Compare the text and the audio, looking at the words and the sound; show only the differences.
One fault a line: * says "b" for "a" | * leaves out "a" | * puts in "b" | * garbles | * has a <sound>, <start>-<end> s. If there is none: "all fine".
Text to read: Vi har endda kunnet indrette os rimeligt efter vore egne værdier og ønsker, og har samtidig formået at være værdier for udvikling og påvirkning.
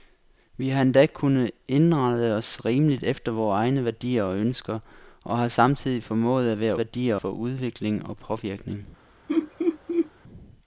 * has a laugh, 9.3-10.1 s